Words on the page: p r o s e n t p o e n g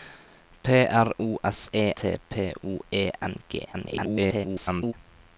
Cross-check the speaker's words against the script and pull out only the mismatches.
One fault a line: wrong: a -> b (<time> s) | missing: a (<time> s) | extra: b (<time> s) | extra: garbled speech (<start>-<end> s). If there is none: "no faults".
missing: n (1.9 s)
extra: garbled speech (3.7-4.9 s)